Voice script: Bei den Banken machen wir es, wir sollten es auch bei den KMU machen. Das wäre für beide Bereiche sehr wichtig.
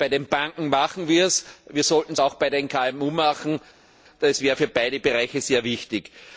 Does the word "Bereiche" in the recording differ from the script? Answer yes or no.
no